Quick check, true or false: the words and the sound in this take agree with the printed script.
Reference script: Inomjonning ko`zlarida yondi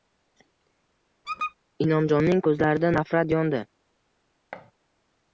false